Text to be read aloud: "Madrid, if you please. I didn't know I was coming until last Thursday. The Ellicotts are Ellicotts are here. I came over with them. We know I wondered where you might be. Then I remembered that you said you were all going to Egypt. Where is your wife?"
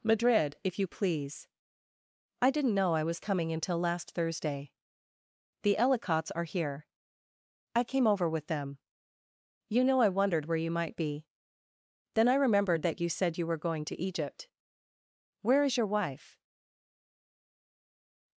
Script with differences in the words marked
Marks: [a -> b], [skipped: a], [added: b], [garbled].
"Madrid, if you please. I didn't know I was coming until last Thursday. The Ellicotts are [skipped: Ellicotts are] here. I came over with them. [We -> You] know I wondered where you might be. Then I remembered that you said you were [skipped: all] going to Egypt. Where is your wife?"